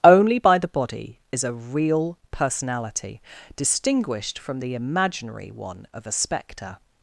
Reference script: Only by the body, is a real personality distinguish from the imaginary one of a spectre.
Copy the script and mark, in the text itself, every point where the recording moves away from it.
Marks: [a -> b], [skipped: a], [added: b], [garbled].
Only by the body, is a real personality [distinguish -> distinguished] from the imaginary one of a spectre.